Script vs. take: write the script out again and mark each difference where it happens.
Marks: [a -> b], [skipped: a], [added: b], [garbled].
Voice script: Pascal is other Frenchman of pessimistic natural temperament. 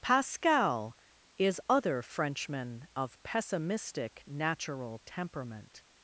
Pascal is other Frenchman of pessimistic natural temperament.